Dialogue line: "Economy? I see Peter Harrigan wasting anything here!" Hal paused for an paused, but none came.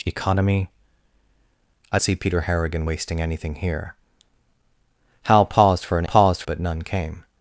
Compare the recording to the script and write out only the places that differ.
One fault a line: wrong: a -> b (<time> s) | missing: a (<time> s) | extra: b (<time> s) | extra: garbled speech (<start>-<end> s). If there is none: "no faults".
no faults